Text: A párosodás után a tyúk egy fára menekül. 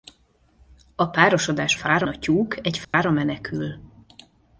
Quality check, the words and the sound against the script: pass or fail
fail